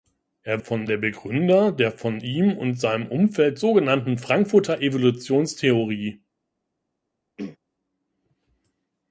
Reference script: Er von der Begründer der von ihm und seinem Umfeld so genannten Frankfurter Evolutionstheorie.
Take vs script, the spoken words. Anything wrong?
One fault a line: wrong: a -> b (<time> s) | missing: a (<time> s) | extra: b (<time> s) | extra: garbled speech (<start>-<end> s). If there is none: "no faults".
no faults